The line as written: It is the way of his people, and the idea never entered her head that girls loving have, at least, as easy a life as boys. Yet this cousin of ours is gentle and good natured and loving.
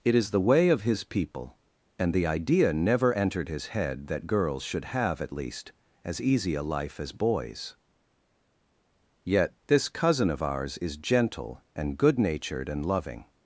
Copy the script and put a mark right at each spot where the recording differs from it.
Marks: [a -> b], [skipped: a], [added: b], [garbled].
It is the way of his people, and the idea never entered [her -> his] head that girls [loving -> should] have, at least, as easy a life as boys. Yet this cousin of ours is gentle and good natured and loving.